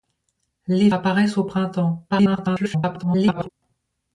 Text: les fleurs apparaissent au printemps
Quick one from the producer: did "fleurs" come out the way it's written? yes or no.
no